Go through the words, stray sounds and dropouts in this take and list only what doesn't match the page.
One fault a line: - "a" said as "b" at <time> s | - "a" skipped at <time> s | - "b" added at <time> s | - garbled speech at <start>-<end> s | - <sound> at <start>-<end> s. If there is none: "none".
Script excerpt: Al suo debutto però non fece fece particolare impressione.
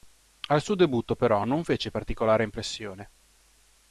- "fece" skipped at 1.9 s